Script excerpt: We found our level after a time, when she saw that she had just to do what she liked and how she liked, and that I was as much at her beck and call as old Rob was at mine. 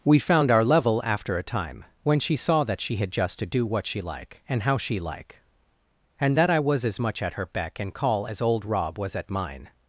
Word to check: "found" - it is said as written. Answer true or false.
true